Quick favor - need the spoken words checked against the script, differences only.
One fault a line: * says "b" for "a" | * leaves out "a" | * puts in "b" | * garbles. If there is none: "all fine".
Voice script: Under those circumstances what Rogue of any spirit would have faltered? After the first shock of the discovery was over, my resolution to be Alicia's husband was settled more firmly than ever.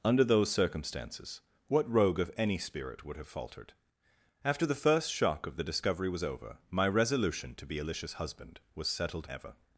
* leaves out "more firmly than"